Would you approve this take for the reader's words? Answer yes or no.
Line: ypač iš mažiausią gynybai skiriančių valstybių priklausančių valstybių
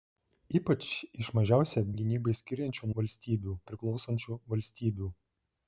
yes